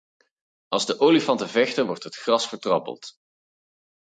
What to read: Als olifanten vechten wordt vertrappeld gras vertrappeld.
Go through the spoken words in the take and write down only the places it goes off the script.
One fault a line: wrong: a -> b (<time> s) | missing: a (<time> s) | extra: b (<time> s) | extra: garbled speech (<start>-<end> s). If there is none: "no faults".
extra: de (0.8 s)
wrong: vertrappeld -> het (2.0 s)